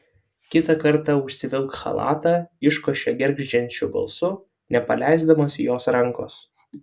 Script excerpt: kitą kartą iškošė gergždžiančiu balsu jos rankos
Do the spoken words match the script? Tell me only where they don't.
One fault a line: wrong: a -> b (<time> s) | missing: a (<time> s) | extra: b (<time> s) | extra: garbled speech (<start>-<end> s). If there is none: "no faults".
extra: užsivilk chalatą (1.2 s)
extra: nepaleisdamas (4.8 s)